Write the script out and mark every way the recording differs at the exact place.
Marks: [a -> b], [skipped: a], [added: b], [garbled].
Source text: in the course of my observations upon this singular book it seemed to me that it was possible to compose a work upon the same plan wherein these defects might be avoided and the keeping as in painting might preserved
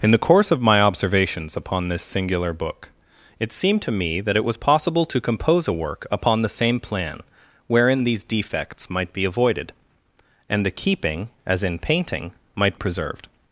in the course of my observations upon this singular book it seemed to me that it was possible to compose a work upon the same plan wherein these defects might be avoided and the keeping as in painting might preserved